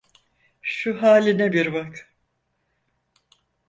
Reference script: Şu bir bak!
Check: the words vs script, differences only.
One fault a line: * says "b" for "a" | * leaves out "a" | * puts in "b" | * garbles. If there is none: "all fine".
* puts in "haline"